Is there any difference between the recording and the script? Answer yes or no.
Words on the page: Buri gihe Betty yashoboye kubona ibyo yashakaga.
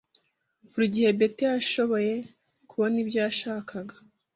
no